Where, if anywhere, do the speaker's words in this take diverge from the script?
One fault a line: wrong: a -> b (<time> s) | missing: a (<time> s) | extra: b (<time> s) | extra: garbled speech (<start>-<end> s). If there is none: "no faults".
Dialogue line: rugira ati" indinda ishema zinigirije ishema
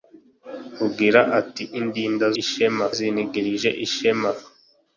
no faults